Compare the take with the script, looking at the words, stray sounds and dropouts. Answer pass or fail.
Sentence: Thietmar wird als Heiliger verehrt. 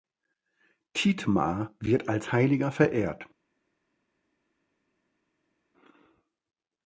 pass